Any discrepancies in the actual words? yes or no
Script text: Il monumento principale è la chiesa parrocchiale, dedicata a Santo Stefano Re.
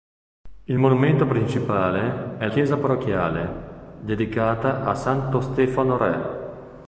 yes